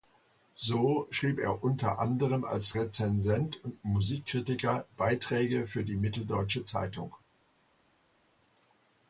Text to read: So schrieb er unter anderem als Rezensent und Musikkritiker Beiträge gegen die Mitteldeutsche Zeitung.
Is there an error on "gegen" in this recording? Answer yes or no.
yes